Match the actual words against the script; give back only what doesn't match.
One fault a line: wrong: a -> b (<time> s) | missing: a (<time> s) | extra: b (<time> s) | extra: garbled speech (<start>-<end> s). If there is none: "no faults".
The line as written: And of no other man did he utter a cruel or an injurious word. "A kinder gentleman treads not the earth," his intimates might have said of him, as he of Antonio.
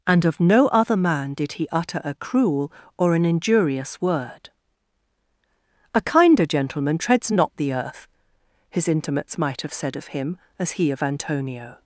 no faults